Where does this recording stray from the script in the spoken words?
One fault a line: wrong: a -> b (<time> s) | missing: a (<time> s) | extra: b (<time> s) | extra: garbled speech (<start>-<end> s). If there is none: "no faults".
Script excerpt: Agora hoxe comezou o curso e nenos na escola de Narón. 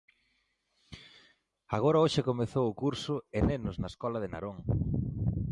no faults